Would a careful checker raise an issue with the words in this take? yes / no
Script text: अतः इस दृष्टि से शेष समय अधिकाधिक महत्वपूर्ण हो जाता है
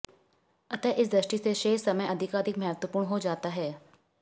no